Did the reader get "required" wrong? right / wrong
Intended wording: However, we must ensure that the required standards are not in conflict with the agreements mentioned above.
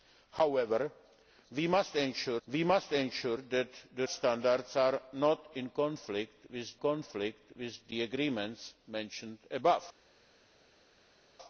wrong